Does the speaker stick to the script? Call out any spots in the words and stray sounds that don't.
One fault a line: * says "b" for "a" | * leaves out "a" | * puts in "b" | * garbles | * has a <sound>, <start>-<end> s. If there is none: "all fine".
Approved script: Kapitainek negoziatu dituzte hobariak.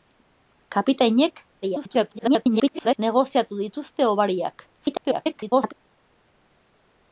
* garbles
* garbles